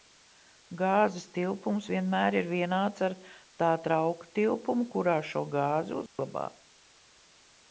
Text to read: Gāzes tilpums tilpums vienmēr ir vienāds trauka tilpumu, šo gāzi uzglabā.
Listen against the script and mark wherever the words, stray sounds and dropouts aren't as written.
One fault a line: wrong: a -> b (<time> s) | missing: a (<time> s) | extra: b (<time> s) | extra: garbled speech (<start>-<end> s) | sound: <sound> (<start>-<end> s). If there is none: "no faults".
missing: tilpums (1.9 s)
extra: ar tā (3.1 s)
extra: kurā (4.9 s)
sound: dropout (6.1-6.2 s)